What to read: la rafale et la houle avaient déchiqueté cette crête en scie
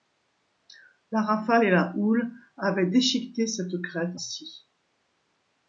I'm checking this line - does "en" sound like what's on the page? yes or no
no